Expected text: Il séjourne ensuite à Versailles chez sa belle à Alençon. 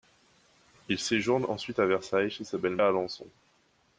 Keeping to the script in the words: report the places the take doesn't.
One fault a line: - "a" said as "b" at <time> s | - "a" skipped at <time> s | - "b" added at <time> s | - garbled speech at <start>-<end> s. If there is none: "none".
none